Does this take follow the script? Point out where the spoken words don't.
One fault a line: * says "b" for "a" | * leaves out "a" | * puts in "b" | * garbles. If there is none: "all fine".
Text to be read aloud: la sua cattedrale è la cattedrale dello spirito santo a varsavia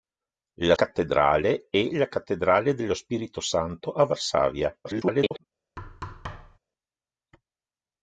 * leaves out "sua"
* garbles